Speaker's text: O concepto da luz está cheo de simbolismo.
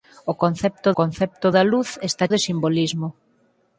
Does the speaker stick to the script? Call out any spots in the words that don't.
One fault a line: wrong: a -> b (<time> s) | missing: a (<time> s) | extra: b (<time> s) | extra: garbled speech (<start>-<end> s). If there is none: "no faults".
extra: concepto (1.0 s)
missing: cheo (2.2 s)